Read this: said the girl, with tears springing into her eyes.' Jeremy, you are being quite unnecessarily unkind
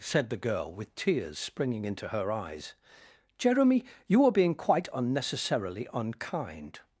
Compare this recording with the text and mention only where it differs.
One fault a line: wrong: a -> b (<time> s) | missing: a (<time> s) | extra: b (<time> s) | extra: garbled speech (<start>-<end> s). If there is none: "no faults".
no faults